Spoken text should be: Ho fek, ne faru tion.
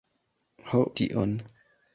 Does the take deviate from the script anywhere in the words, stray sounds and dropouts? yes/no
yes